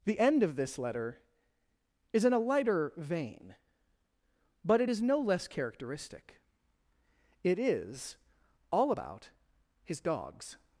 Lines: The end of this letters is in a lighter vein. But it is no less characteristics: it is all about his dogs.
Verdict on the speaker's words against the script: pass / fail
fail